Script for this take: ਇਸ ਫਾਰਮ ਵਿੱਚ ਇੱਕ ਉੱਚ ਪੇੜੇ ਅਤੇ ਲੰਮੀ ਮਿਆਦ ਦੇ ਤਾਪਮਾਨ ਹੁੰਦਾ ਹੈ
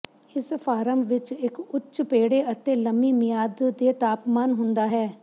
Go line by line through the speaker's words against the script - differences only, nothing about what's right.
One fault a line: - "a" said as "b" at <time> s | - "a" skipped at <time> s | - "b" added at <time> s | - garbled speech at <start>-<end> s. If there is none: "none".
none